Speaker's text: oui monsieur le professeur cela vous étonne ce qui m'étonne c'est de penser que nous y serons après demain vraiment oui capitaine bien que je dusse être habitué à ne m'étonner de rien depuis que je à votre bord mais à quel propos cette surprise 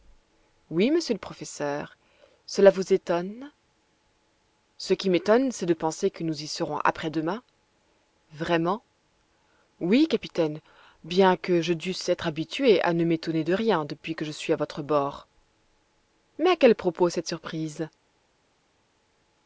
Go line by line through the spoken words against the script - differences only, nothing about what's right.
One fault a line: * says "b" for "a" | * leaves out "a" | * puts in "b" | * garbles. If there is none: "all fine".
* puts in "suis"